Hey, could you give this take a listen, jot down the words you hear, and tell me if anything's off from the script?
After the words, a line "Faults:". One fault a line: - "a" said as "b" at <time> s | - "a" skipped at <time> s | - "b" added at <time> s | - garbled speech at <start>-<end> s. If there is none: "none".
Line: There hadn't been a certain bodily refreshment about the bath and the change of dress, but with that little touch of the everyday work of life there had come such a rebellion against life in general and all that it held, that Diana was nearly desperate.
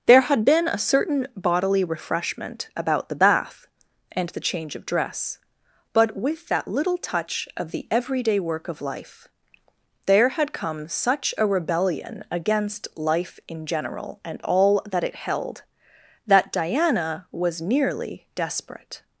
There had been a certain bodily refreshment about the bath and the change of dress, but with that little touch of the everyday work of life there had come such a rebellion against life in general and all that it held, that Diana was nearly desperate.
Faults:
- "hadn't" said as "had" at 0.2 s